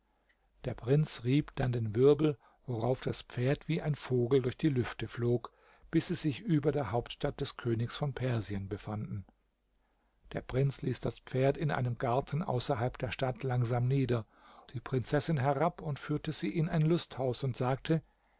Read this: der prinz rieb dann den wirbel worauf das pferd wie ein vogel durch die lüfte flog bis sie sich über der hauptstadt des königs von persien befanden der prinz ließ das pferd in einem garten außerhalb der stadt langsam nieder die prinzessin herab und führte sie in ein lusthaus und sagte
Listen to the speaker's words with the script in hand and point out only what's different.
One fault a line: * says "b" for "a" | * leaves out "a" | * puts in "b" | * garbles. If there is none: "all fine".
all fine